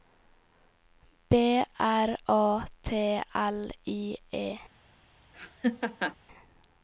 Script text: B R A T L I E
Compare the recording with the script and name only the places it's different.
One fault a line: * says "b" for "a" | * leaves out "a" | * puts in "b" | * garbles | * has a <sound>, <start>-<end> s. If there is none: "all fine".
* has a laugh, 5.3-6.2 s